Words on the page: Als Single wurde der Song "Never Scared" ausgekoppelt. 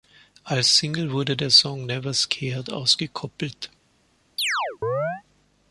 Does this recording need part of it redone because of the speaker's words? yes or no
no